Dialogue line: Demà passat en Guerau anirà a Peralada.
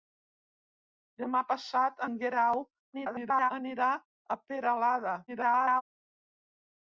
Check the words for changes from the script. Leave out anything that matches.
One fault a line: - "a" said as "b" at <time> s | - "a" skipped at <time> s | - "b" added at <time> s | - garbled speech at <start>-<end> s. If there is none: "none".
- garbled speech at 2.9-3.5 s
- garbled speech at 5.3-5.8 s